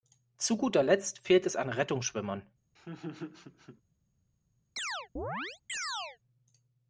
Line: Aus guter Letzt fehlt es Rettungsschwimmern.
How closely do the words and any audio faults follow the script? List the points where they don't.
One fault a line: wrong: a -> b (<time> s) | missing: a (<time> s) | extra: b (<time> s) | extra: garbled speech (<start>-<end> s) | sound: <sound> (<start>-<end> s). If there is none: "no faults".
wrong: Aus -> Zu (0.4 s)
extra: an (1.6 s)
sound: laugh (2.8-3.8 s)
sound: chirp (4.8-6.2 s)